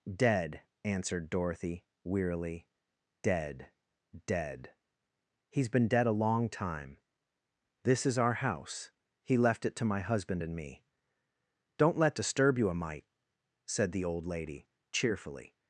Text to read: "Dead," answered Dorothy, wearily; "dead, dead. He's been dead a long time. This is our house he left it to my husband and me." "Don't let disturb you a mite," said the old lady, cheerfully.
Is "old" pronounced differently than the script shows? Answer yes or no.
no